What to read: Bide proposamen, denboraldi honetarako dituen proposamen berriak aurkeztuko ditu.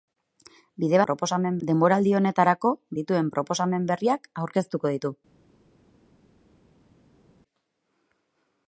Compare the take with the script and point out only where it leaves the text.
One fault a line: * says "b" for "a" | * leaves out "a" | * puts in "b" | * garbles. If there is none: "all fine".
all fine